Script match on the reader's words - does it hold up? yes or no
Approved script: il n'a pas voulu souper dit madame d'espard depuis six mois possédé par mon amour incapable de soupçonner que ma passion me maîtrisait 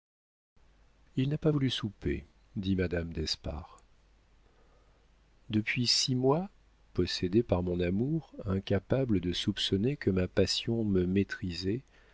yes